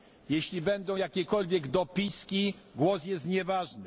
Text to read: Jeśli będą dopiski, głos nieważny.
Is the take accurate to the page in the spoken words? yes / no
no